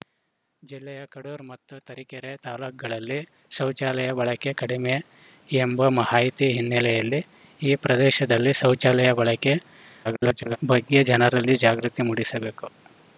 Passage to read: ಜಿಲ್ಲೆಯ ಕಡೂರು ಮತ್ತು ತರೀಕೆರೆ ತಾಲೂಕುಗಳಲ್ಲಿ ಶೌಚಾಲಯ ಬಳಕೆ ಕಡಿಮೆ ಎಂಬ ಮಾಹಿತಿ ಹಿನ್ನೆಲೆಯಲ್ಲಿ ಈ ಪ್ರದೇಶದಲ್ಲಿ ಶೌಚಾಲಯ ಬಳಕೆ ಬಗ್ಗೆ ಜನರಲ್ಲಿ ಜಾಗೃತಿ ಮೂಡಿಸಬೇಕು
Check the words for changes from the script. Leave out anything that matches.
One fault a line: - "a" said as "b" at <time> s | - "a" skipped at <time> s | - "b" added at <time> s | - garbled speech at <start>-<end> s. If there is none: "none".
- garbled speech at 10.0-10.6 s